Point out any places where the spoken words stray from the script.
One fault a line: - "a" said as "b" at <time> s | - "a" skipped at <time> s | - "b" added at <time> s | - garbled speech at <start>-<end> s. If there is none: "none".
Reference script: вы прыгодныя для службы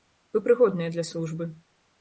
none